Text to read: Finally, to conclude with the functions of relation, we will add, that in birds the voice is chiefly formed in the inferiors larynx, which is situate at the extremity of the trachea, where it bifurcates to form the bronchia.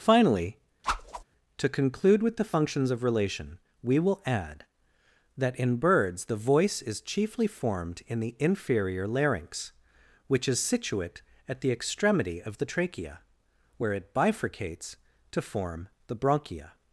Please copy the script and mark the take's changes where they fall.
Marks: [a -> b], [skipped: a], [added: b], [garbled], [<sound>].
Finally, [whoosh] to conclude with the functions of relation, we will add, that in birds the voice is chiefly formed in the [inferiors -> inferior] larynx, which is situate at the extremity of the trachea, where it bifurcates to form the bronchia.